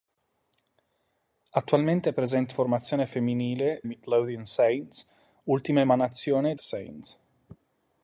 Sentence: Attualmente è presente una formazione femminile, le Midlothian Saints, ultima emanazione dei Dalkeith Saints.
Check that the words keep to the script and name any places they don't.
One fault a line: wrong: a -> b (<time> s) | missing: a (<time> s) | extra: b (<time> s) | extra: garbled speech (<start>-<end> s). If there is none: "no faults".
missing: una (2.5 s)
missing: le (3.8 s)
missing: dei Dalkeith (6.6 s)